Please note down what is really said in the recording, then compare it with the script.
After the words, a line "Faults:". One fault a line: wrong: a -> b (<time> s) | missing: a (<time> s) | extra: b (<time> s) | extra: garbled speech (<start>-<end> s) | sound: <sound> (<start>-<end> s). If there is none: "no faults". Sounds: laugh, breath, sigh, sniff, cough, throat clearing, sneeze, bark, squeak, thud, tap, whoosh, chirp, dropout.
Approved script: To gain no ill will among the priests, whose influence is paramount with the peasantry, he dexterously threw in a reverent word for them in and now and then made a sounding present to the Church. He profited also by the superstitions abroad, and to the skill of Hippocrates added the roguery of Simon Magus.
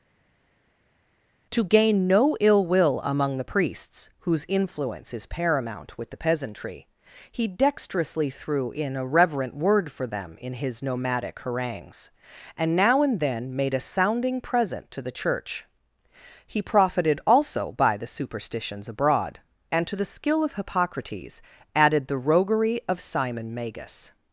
To gain no ill will among the priests, whose influence is paramount with the peasantry, he dexterously threw in a reverent word for them in his nomadic harangues, and now and then made a sounding present to the Church. He profited also by the superstitions abroad, and to the skill of Hippocrates added the roguery of Simon Magus.
Faults:
extra: his nomadic harangues (10.5 s)